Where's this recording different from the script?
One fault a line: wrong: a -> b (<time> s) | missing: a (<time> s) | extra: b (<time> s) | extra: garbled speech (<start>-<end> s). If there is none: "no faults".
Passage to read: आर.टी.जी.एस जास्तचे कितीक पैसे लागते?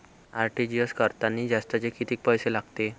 extra: करतांनी (0.9 s)